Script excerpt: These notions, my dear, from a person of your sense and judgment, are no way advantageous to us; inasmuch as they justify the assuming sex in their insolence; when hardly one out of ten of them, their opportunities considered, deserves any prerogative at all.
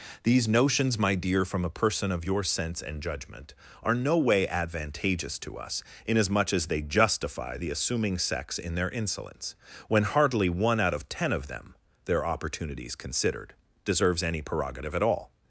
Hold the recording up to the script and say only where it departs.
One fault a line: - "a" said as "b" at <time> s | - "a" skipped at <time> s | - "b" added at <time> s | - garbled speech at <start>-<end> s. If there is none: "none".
none